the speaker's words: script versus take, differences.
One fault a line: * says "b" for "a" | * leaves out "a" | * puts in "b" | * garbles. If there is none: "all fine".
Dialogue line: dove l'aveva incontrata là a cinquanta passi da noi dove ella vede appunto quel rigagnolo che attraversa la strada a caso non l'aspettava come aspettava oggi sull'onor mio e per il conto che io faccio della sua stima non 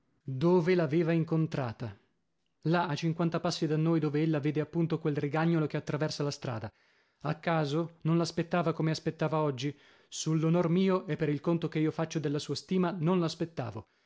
all fine